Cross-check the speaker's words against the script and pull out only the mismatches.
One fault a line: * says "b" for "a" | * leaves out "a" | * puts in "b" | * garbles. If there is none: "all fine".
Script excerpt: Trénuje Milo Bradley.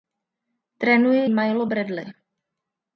all fine